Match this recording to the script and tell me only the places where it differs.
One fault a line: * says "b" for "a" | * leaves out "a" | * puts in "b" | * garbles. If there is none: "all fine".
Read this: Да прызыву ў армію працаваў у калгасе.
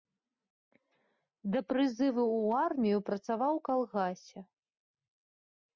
all fine